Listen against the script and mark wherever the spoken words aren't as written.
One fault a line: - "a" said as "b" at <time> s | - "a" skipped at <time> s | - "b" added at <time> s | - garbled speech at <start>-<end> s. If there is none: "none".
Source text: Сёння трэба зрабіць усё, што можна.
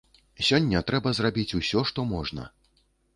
none